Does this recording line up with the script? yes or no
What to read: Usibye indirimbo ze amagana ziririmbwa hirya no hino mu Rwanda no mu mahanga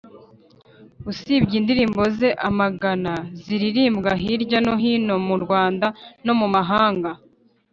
yes